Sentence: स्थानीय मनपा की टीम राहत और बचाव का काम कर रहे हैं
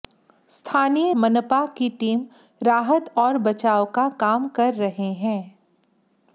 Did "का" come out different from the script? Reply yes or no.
no